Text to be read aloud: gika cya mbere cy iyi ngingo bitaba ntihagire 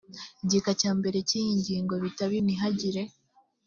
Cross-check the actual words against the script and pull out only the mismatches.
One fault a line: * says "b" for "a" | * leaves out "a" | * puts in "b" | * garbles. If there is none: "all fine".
all fine